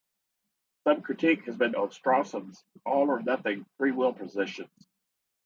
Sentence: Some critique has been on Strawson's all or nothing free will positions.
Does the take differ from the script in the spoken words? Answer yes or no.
no